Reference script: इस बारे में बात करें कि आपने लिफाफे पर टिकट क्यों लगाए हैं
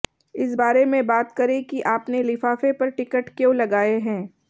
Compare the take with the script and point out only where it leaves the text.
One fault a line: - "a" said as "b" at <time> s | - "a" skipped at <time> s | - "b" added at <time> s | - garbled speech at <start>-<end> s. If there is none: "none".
none